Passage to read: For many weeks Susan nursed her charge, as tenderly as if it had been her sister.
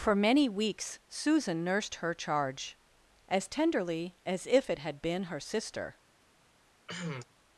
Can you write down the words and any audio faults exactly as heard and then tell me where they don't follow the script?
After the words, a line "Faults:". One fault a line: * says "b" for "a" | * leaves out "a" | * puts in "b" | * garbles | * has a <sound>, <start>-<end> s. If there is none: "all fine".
For many weeks Susan nursed her charge, as tenderly as if it had been her sister.
Faults:
* has a cough, 6.9-7.2 s